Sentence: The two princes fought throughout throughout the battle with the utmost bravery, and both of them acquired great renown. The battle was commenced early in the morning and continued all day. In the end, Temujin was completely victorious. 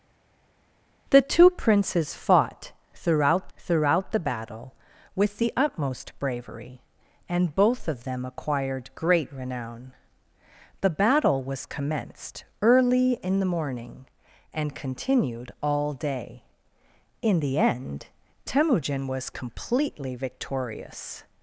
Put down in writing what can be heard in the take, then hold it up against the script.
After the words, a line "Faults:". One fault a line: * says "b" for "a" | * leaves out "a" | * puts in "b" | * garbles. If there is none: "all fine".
The two princes fought throughout throughout the battle with the utmost bravery, and both of them acquired great renown. The battle was commenced early in the morning and continued all day. In the end, Temujin was completely victorious.
Faults:
all fine